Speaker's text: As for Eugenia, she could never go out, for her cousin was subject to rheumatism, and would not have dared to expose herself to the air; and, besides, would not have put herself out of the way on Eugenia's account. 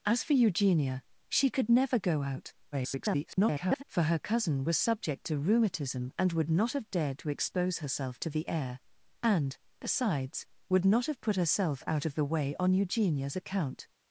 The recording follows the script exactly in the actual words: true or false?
false